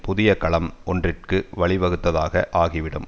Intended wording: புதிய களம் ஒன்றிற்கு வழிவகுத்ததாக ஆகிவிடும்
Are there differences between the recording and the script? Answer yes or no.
no